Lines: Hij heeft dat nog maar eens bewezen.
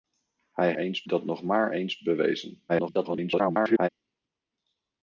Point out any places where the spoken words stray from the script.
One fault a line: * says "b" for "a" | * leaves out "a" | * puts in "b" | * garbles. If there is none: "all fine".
* says "eens" for "heeft"
* garbles